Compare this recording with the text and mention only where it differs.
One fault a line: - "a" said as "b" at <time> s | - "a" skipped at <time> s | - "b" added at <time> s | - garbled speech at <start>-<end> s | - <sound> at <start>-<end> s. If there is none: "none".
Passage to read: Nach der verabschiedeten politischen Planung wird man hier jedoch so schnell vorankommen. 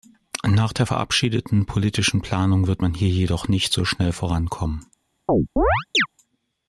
- "nicht" added at 3.5 s
- chirp at 5.3-6.1 s